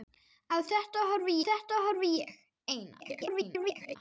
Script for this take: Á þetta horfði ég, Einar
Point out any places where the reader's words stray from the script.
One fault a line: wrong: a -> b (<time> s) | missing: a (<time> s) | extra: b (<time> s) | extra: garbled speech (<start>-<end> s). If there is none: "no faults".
extra: þetta horfði (1.5 s)
extra: garbled speech (3.0-4.0 s)